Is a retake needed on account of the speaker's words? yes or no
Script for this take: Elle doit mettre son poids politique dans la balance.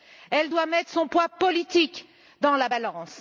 no